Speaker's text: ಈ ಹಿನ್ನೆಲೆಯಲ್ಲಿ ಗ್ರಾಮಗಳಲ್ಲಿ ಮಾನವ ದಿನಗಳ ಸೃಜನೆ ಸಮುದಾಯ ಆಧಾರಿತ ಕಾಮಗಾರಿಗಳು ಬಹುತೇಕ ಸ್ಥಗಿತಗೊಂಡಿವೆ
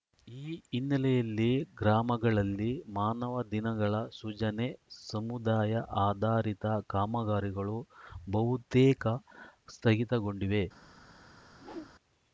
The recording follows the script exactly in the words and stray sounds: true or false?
false